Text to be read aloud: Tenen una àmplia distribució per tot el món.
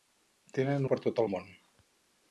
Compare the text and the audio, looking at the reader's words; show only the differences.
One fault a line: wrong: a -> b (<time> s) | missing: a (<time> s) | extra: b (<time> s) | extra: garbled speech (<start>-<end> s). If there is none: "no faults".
missing: una àmplia distribució (0.9 s)